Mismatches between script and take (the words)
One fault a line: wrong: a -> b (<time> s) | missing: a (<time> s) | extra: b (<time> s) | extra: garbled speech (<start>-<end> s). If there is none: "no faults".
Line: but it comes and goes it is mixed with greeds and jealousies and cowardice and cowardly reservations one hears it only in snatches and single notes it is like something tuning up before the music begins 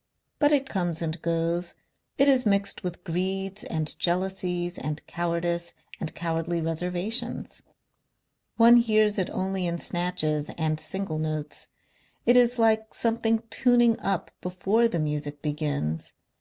no faults